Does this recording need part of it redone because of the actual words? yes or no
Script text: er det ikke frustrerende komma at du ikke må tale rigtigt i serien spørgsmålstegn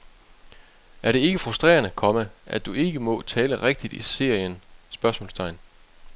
no